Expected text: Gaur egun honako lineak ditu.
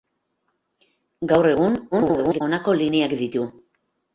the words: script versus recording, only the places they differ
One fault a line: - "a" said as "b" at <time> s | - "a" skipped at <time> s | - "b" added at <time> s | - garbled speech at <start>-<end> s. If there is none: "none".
- garbled speech at 1.9-2.4 s